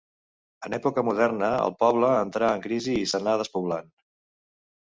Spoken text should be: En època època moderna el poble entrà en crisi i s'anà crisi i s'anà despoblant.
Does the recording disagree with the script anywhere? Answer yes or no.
yes